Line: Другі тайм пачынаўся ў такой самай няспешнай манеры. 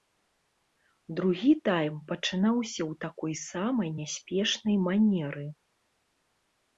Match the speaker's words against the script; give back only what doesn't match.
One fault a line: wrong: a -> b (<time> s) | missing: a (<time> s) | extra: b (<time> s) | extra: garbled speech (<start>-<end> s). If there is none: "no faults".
no faults